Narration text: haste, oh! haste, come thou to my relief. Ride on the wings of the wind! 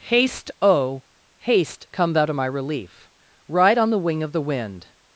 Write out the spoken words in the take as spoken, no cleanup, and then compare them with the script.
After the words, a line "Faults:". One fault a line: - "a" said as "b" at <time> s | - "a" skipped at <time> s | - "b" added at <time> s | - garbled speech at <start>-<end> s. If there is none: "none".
haste, oh! haste, come thou to my relief. Ride on the wing of the wind!
Faults:
- "wings" said as "wing" at 4.0 s